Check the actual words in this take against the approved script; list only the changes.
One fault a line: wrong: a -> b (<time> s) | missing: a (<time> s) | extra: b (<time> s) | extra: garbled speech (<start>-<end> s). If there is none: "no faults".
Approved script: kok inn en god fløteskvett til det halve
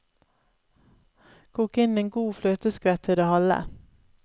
no faults